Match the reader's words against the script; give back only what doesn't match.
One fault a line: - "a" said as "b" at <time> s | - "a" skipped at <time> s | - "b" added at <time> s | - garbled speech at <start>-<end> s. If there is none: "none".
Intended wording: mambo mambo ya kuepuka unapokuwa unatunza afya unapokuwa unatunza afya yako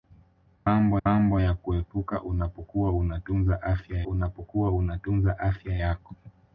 none